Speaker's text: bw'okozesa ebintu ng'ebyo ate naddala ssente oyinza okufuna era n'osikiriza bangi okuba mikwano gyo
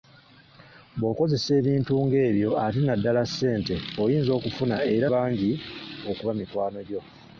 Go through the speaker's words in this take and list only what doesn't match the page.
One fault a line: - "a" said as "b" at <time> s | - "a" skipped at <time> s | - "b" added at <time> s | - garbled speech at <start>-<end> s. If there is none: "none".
- "n'osikiriza" skipped at 5.1 s